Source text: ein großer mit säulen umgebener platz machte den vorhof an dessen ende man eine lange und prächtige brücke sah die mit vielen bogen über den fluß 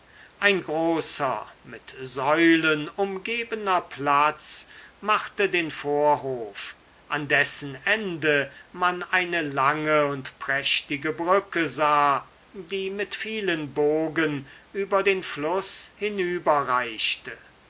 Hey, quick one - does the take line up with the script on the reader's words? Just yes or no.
yes